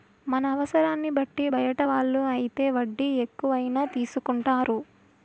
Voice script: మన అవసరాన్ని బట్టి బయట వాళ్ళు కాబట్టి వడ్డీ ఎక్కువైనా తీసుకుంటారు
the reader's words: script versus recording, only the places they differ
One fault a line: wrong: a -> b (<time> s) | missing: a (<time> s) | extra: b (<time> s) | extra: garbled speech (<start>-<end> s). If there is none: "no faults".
wrong: కాబట్టి -> అయితే (2.3 s)